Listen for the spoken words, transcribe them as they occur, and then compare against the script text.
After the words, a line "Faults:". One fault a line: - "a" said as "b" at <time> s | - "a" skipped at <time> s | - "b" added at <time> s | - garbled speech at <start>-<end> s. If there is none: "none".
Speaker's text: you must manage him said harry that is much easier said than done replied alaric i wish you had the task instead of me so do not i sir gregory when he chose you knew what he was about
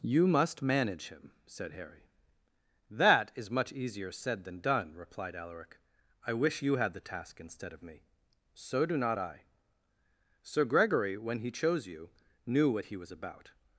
you must manage him said harry that is much easier said than done replied alaric i wish you had the task instead of me so do not i sir gregory when he chose you knew what he was about
Faults:
none